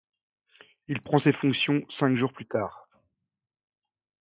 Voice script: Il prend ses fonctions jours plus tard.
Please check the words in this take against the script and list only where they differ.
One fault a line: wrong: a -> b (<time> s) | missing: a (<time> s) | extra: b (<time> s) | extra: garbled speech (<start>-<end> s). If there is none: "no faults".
extra: cinq (1.9 s)